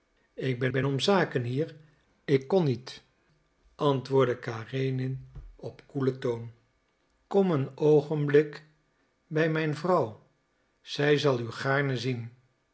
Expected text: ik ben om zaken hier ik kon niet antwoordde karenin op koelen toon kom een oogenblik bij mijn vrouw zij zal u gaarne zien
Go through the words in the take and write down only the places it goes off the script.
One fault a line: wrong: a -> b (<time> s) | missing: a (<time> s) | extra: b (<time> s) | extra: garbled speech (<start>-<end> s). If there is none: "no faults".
extra: ben (0.7 s)